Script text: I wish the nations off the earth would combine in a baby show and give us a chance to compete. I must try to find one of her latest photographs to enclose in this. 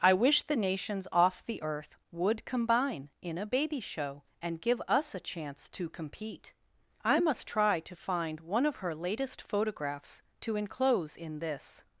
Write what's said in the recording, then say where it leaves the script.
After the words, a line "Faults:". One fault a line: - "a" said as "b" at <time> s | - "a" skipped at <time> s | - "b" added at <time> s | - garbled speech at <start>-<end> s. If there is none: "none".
I wish the nations off the earth would combine in a baby show and give us a chance to compete. I must try to find one of her latest photographs to enclose in this.
Faults:
none